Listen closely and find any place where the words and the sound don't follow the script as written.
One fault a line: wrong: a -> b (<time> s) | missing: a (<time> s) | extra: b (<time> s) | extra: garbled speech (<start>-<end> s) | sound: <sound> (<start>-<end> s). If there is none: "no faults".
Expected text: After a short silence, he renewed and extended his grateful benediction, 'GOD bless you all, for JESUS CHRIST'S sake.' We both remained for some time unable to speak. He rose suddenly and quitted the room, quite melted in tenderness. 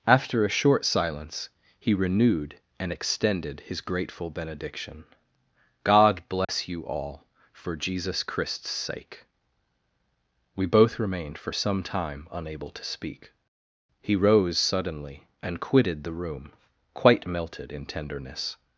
sound: dropout (6.4-6.5 s)